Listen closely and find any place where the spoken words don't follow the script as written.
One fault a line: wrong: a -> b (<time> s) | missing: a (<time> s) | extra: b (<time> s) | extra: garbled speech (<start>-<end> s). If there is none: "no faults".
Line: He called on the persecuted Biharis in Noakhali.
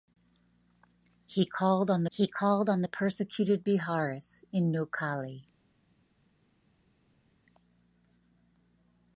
extra: he called on (2.1 s)